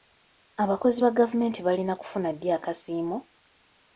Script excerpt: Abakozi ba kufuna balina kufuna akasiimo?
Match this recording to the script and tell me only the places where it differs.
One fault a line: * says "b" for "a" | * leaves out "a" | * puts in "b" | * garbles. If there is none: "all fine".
* says "gavumenti" for "kufuna"
* puts in "ddi"